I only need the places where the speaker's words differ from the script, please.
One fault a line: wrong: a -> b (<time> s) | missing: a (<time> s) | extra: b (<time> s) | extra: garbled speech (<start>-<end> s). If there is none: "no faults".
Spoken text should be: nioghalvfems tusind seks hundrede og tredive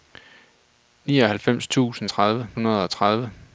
wrong: seks -> tredive (2.1 s)